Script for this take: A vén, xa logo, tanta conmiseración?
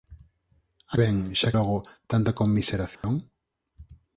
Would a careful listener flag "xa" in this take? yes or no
no